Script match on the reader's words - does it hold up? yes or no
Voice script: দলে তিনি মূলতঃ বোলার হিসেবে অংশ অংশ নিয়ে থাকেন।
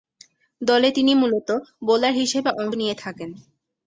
no